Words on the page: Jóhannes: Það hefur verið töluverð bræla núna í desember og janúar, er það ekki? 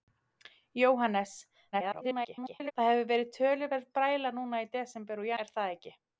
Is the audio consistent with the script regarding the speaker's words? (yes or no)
no